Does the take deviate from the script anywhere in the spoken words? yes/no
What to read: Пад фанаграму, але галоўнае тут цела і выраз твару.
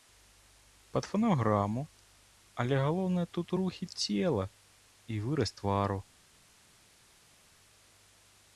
yes